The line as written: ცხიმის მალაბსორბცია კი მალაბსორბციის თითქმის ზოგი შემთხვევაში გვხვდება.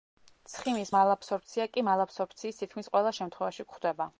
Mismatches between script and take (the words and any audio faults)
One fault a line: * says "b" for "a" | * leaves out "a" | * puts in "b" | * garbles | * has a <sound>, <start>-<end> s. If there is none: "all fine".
* says "ყველა" for "ზოგი"